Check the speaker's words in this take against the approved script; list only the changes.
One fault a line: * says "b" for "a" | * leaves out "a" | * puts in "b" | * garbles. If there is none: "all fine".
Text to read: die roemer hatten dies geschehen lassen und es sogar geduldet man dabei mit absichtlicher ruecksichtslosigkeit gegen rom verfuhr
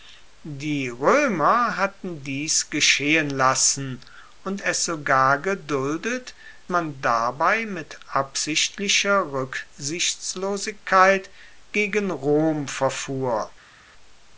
all fine